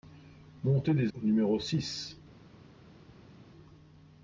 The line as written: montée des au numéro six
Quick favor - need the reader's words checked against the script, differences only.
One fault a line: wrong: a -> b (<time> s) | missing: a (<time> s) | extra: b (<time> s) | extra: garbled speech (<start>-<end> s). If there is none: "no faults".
no faults